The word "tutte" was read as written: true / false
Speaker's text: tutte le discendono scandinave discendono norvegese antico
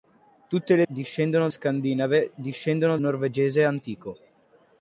true